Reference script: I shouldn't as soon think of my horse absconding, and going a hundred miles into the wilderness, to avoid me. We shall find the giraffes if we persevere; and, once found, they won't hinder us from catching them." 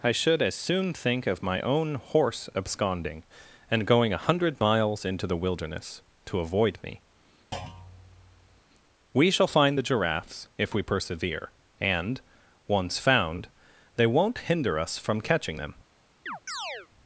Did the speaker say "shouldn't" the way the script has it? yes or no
no